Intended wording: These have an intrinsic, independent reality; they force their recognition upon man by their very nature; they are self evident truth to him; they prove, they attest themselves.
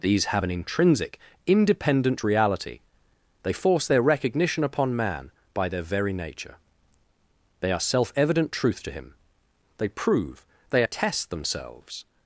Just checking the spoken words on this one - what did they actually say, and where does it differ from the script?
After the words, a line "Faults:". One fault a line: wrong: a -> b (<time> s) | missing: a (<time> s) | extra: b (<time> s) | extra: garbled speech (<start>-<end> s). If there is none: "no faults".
These have an intrinsic, independent reality; they force their recognition upon man by their very nature; they are self evident truth to him; they prove, they attest themselves.
Faults:
no faults